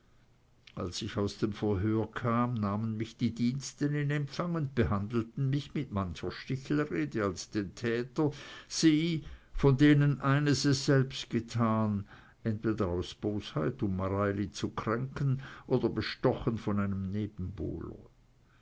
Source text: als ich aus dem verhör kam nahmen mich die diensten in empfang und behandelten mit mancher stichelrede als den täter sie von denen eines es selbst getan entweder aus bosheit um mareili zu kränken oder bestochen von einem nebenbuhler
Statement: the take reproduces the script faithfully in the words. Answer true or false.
false